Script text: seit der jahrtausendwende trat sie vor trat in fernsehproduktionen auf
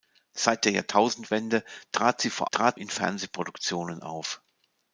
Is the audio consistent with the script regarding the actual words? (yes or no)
yes